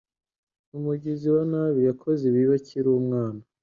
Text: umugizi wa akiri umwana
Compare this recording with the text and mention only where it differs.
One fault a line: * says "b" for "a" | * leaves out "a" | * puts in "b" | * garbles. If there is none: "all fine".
* puts in "nabi yakoze ibibi"